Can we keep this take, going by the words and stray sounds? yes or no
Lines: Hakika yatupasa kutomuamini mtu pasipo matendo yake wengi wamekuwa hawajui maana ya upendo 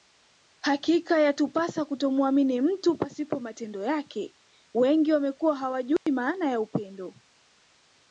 no